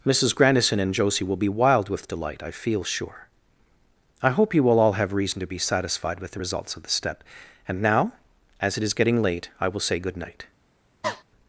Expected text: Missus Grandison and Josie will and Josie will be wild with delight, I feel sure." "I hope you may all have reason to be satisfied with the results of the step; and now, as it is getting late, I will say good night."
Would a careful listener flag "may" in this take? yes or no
yes